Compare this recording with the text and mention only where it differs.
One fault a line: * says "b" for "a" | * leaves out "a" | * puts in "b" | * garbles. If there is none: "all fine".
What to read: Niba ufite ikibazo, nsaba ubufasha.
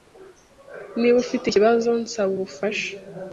all fine